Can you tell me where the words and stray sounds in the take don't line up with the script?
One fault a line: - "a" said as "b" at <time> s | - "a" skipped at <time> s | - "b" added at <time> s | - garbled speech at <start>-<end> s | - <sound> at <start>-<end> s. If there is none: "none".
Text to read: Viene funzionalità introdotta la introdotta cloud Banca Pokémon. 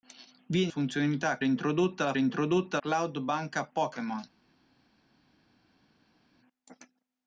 none